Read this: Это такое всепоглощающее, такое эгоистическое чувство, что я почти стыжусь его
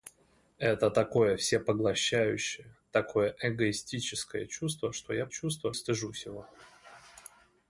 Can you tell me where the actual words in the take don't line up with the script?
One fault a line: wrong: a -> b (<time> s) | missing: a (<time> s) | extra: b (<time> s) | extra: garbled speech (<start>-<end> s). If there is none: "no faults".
wrong: почти -> чувство (5.3 s)